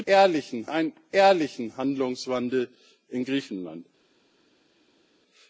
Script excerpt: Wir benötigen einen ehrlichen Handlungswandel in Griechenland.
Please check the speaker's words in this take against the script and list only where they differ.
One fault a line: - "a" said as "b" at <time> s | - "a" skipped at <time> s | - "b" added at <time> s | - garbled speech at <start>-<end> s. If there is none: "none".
- "benötigen" said as "ehrlichen" at 0.1 s